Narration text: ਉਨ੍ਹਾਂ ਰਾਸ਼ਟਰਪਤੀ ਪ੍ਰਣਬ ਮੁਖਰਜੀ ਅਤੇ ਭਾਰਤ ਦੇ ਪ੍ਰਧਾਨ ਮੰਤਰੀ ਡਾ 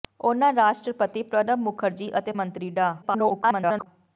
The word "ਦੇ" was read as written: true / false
false